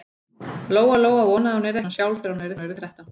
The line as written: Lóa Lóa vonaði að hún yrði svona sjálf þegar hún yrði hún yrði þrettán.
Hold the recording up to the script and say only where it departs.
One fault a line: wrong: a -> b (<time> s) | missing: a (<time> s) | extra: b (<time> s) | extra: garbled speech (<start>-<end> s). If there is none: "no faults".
no faults